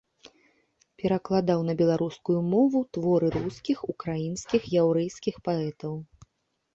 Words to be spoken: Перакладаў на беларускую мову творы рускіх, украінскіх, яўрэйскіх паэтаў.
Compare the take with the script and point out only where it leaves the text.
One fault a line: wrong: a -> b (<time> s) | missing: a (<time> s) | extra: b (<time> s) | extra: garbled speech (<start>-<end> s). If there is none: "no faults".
no faults